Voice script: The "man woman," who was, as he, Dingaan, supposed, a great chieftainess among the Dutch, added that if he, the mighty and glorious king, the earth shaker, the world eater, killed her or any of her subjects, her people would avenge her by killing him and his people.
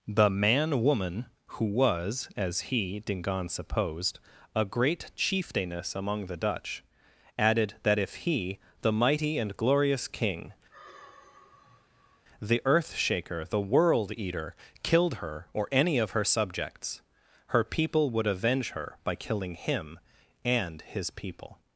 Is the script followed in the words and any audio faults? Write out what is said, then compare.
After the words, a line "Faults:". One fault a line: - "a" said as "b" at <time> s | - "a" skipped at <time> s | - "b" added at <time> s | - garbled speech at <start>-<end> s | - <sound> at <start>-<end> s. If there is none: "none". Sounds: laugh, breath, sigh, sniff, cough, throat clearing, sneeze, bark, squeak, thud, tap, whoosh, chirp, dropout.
The "man woman," who was, as he, Dingaan, supposed, a great chieftainess among the Dutch, added that if he, the mighty and glorious king, the earth shaker, the world eater, killed her or any of her subjects, her people would avenge her by killing him and his people.
Faults:
- sigh at 10.7-12.2 s